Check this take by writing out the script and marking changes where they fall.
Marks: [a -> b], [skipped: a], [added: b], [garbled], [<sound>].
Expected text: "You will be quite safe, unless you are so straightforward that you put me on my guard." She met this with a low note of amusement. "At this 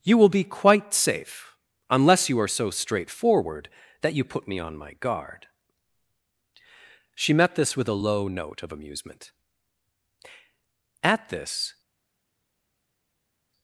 "You will be quite safe, unless you are so straightforward that you put me on my guard." She met this with a low note of amusement. "At this